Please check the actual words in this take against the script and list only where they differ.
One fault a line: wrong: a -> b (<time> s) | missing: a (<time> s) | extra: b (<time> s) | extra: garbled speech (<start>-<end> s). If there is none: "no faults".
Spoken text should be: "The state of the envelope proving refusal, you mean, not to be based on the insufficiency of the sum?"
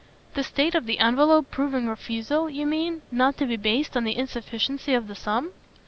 no faults